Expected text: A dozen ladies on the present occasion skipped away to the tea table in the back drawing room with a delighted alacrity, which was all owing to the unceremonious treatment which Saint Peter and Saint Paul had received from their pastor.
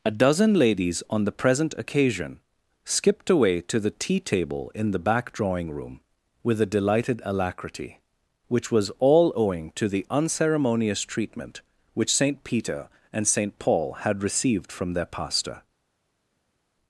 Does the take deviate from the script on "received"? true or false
false